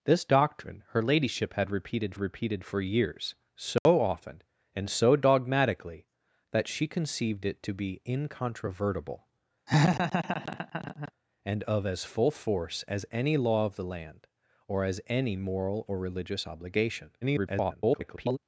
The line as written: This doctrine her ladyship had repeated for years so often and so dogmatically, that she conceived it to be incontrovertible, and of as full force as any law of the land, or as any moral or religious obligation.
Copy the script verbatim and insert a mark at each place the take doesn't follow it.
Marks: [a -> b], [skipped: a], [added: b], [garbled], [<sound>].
This doctrine her ladyship had repeated [added: repeated] for years so [dropout] often and so dogmatically, that she conceived it to be incontrovertible, [laugh] and of as full force as any law of the land, or as any moral or religious obligation. [garbled]